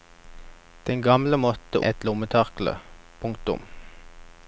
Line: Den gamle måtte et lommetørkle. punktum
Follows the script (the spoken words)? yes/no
yes